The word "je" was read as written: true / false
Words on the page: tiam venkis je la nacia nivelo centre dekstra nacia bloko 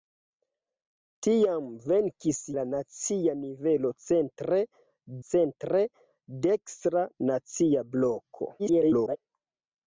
false